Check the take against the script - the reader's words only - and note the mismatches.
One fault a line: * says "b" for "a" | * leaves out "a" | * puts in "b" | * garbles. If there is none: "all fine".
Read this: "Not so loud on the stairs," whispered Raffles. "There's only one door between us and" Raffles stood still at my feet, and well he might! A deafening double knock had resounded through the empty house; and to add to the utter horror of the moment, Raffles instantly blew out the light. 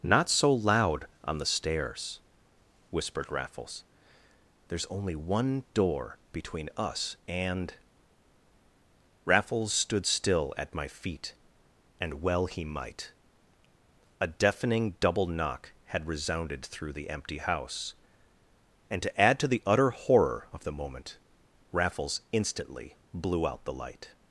all fine